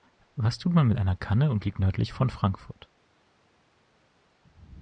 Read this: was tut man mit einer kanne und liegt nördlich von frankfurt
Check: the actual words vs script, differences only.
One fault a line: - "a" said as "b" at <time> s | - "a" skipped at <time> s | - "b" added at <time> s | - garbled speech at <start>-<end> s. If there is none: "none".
none